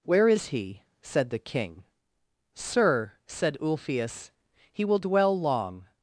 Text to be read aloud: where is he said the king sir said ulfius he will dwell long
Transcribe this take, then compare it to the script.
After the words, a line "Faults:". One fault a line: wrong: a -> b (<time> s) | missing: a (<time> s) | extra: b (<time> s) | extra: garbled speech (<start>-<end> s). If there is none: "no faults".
where is he said the king sir said ulfius he will dwell long
Faults:
no faults